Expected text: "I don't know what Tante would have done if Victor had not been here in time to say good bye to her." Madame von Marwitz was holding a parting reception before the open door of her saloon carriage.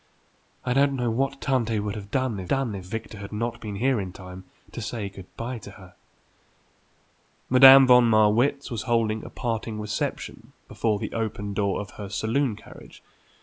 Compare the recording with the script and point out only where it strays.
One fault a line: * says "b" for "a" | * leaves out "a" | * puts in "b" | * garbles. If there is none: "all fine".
* puts in "done if"